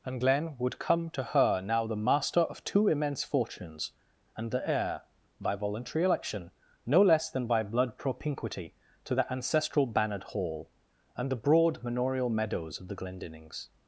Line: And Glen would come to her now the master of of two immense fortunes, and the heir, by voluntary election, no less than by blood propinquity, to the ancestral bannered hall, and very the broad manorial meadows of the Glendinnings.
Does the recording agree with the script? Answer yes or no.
no